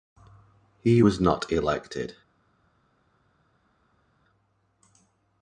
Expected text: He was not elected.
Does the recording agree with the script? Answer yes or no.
yes